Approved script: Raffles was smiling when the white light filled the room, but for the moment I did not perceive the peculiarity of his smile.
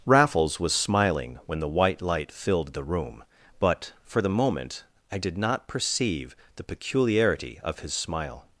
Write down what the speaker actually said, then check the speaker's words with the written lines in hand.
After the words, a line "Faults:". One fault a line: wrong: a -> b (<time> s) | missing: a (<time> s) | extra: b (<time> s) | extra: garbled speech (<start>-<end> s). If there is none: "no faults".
Raffles was smiling when the white light filled the room, but for the moment I did not perceive the peculiarity of his smile.
Faults:
no faults